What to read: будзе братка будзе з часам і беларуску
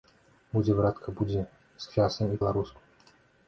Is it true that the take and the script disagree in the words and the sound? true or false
false